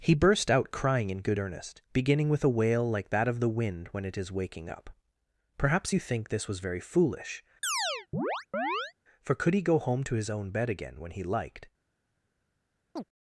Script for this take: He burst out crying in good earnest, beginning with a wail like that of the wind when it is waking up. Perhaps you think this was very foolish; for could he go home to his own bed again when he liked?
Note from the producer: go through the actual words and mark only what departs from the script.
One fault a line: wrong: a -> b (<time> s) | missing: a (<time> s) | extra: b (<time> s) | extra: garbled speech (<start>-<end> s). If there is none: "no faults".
no faults